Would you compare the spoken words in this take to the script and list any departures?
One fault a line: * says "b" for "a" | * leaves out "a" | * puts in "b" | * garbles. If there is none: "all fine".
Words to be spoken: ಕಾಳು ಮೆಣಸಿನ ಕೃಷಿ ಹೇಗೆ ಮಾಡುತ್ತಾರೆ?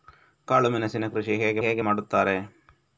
* puts in "ಹೇಗೆ"